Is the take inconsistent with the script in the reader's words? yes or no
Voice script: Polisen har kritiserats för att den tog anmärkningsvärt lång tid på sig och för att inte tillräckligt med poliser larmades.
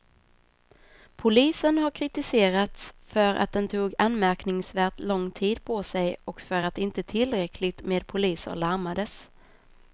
no